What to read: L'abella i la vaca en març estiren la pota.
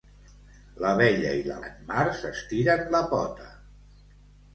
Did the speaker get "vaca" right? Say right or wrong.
wrong